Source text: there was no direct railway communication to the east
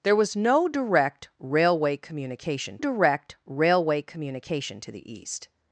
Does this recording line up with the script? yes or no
no